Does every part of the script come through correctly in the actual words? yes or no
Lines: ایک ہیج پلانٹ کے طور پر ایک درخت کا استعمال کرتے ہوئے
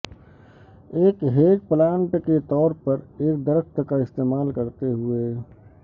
yes